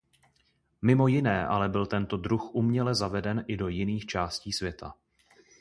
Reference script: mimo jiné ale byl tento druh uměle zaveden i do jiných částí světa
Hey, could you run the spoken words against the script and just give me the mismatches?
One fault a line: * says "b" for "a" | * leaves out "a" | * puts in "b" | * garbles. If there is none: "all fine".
all fine